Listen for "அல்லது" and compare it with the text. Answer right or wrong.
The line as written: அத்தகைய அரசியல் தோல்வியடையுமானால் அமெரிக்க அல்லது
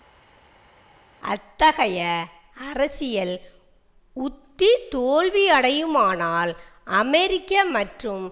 wrong